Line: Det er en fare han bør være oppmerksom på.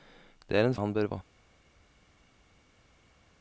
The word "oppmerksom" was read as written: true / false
false